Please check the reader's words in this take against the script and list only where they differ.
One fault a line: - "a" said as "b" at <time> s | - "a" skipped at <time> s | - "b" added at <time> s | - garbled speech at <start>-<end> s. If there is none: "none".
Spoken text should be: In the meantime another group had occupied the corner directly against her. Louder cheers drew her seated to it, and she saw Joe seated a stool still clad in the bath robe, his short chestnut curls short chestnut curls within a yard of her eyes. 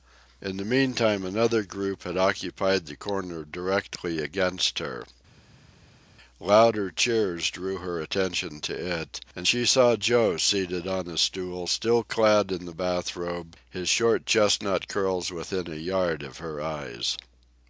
- "seated" said as "attention" at 8.0 s
- "on" added at 10.9 s
- "short chestnut curls" skipped at 15.3 s